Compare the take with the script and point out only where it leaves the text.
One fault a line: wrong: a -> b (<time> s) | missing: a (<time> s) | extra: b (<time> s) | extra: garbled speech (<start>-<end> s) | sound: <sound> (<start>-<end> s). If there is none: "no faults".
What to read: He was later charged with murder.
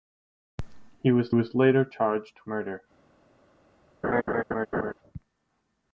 extra: was (1.3 s)
missing: with (2.4 s)
sound: laugh (4.0-4.9 s)